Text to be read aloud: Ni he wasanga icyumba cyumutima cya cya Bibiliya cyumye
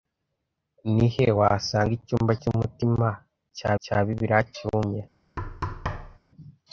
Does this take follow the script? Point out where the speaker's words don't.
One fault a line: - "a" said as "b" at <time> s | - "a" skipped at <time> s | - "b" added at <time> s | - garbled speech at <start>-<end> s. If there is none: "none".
none